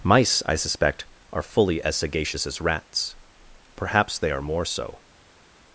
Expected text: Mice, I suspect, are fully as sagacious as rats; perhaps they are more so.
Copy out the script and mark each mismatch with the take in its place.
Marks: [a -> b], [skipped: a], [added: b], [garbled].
Mice, I suspect, are fully as sagacious as rats; perhaps they are more so.